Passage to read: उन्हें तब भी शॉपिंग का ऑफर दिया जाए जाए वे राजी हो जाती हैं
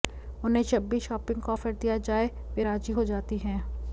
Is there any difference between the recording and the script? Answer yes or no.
yes